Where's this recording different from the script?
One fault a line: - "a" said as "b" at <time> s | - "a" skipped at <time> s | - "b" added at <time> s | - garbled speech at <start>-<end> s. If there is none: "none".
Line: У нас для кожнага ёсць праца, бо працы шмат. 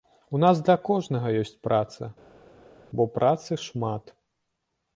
none